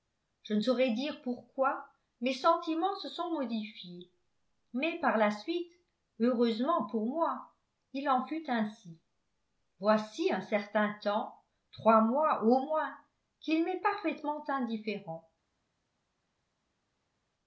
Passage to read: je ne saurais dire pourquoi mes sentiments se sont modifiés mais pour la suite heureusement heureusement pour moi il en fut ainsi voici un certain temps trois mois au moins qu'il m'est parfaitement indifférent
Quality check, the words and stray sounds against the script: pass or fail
fail